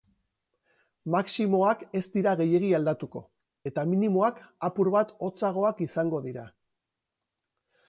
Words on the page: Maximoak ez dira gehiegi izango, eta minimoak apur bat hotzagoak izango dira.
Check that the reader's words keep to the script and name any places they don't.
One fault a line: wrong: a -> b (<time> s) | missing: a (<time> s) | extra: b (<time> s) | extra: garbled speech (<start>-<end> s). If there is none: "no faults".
wrong: izango -> aldatuko (2.8 s)